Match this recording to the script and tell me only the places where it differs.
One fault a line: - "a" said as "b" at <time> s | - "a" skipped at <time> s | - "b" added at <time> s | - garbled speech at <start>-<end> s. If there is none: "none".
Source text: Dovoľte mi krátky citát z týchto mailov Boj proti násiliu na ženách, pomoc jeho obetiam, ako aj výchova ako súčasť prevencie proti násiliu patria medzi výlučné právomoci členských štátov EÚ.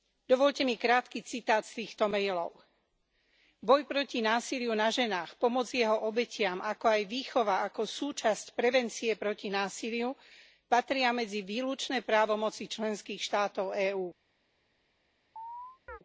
none